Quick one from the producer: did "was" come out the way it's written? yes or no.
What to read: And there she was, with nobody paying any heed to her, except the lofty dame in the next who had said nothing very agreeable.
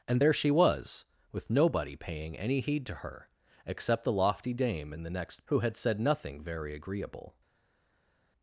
yes